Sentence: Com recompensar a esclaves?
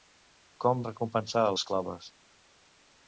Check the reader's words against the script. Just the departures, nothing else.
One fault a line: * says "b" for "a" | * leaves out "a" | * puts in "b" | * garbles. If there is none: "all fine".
all fine